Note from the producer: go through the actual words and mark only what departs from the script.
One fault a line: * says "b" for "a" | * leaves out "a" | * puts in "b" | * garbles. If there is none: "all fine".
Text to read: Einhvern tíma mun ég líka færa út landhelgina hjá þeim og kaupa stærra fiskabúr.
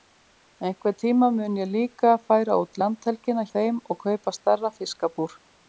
* leaves out "hjá"